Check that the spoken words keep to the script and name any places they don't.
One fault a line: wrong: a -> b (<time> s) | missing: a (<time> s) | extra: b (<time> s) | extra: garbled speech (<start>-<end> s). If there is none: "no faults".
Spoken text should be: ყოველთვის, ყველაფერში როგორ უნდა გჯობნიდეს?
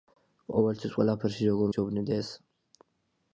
missing: უნდა (1.7 s)